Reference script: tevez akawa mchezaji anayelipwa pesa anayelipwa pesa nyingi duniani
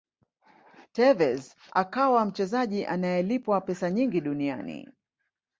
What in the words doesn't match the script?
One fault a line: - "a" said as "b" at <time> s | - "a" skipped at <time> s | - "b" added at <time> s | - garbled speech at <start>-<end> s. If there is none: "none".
- "anayelipwa pesa" skipped at 3.9 s